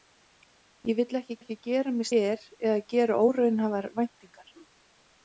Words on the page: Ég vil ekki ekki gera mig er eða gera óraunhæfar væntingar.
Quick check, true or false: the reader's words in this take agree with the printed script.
true